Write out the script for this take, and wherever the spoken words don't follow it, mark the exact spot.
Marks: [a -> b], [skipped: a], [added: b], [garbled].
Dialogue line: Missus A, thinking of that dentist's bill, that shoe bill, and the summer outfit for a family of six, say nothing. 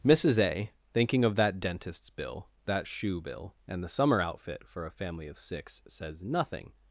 Missus A, thinking of that dentist's bill, that shoe bill, and the summer outfit for a family of six, [say -> says] nothing.